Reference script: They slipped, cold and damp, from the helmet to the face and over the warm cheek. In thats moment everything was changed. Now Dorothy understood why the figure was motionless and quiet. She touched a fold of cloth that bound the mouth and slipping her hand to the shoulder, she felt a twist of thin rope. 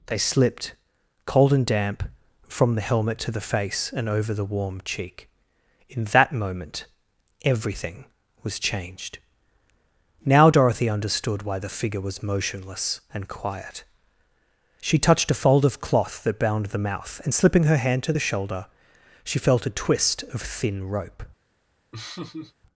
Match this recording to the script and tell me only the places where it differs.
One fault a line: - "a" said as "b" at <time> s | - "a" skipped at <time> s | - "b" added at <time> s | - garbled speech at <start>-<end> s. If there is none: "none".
- "thats" said as "that" at 6.0 s